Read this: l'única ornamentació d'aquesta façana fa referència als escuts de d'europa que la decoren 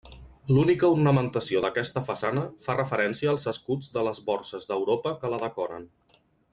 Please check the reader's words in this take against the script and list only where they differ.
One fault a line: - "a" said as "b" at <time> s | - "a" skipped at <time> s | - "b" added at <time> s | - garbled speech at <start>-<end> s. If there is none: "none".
- "les borses" added at 4.1 s